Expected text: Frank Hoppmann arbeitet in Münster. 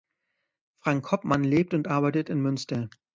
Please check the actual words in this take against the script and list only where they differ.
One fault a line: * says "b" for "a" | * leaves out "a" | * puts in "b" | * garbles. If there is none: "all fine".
* puts in "lebt und"